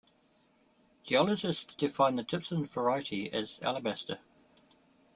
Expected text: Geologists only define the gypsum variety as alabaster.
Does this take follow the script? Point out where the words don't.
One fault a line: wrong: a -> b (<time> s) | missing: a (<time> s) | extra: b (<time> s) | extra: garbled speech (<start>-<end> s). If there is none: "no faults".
missing: only (1.8 s)